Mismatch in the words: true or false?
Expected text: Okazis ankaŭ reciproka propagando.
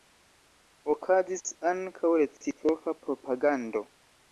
false